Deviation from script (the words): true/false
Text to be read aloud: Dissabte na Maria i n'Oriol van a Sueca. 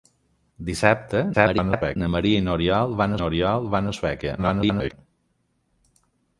true